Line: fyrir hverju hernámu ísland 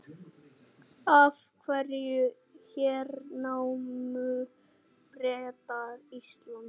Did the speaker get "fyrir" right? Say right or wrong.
wrong